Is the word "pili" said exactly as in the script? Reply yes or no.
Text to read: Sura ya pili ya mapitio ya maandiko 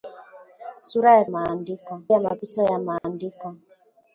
no